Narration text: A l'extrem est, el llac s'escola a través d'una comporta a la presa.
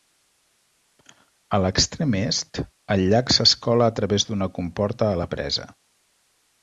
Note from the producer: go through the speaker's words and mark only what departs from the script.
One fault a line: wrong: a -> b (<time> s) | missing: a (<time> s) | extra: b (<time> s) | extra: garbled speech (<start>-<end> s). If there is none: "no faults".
no faults